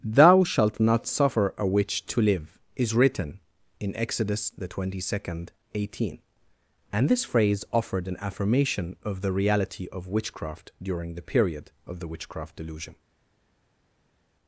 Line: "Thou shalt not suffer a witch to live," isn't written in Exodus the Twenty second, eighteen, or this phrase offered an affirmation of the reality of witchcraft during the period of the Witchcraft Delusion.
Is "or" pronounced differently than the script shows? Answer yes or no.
yes